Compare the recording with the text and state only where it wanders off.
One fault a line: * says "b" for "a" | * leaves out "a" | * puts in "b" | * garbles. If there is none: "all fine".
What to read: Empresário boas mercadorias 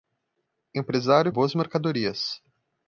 all fine